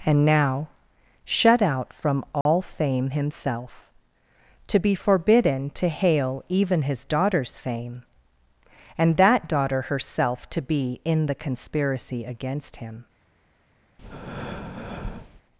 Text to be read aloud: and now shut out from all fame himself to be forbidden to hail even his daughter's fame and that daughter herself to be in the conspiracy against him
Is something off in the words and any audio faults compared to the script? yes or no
yes